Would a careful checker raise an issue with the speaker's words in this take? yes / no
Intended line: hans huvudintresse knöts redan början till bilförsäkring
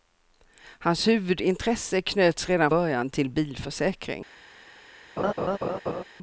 no